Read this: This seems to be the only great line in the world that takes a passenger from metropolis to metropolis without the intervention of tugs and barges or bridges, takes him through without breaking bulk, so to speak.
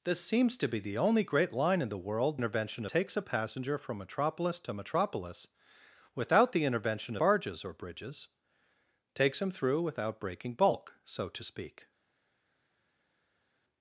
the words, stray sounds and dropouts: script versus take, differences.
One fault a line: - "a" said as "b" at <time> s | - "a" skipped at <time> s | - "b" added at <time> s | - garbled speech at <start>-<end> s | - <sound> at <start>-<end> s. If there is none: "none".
- "that" said as "intervention" at 2.4 s
- "of tugs and" skipped at 7.2 s